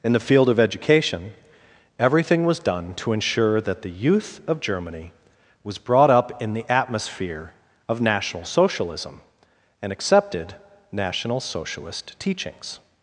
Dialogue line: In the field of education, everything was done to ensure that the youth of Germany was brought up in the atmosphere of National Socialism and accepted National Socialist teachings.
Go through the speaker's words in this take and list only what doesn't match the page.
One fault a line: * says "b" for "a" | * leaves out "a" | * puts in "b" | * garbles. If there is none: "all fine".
all fine